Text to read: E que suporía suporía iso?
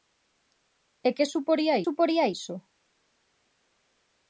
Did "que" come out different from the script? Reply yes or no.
no